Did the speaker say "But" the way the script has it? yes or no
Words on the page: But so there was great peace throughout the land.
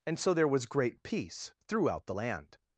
no